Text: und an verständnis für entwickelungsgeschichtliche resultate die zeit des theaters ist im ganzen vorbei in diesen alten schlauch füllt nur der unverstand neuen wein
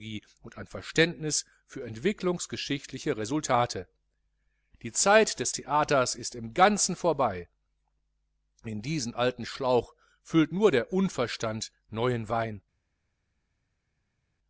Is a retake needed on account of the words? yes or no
no